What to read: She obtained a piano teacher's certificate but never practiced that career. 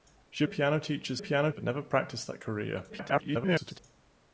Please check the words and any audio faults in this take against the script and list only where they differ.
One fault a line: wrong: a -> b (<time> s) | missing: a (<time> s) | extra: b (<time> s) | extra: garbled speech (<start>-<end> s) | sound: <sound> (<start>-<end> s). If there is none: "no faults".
missing: obtained (0.4 s)
wrong: certificate -> piano (1.2 s)
extra: garbled speech (2.9-3.8 s)